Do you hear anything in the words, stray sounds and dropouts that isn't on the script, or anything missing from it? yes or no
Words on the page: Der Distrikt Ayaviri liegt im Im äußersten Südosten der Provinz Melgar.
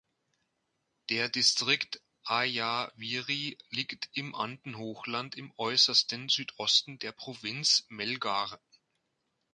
yes